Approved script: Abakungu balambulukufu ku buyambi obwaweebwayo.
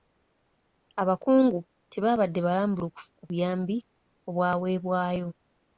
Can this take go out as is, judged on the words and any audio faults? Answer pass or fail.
fail